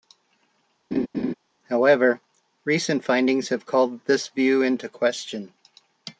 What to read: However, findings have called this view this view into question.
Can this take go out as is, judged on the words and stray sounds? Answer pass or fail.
fail